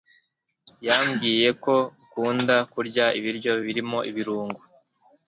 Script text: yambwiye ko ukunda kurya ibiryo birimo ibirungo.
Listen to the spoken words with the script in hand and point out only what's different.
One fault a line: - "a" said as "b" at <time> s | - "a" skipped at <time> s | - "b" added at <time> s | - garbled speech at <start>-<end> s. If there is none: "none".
none